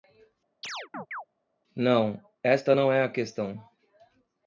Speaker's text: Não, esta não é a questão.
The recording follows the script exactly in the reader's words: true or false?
true